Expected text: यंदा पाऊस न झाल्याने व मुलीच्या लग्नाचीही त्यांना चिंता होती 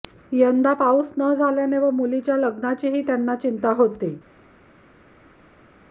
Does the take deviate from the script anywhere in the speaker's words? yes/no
no